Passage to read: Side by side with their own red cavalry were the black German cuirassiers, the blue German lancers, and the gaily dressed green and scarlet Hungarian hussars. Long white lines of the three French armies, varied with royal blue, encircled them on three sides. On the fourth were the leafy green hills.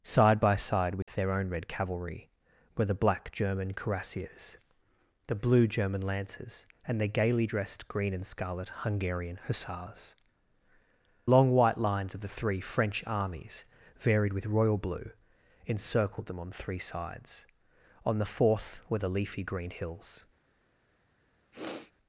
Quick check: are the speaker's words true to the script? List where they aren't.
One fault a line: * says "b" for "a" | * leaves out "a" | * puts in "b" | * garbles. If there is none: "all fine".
all fine